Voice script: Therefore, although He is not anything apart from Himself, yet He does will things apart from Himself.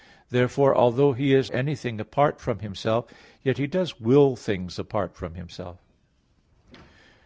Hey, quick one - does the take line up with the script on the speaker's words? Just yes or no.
no